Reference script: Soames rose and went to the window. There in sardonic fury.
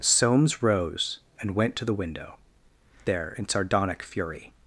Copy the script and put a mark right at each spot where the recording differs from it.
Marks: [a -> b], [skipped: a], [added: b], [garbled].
Soames rose and went to the window. There in sardonic fury.